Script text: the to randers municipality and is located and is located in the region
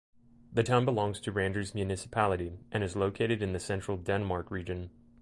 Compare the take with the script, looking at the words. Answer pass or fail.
fail